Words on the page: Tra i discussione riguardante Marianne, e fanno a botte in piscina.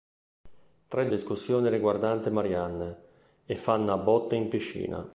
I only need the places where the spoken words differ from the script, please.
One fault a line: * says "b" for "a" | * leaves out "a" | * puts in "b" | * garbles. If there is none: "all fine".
all fine